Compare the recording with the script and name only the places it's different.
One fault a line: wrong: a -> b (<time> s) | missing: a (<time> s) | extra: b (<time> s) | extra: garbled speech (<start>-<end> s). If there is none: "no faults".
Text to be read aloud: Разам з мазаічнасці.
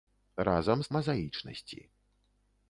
no faults